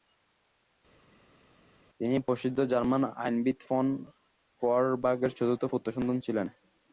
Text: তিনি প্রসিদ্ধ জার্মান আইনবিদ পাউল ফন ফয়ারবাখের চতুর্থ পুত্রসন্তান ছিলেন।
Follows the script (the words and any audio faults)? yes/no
no